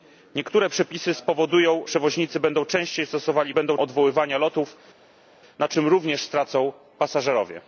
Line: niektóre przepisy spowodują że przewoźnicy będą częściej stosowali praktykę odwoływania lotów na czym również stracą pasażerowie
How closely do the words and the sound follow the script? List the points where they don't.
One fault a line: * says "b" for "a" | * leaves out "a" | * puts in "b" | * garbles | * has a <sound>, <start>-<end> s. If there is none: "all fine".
* leaves out "że"
* says "będą" for "praktykę"